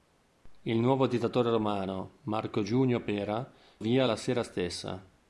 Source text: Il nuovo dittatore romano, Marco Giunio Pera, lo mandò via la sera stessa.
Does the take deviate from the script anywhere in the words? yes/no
yes